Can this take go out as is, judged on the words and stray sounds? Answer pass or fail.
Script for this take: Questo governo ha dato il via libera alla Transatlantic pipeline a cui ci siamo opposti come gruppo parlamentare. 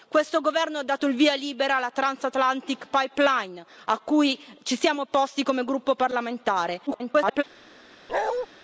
fail